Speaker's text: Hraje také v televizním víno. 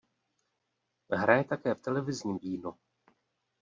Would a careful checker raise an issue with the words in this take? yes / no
no